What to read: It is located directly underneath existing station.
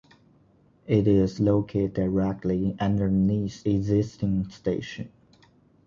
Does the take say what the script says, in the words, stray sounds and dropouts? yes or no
yes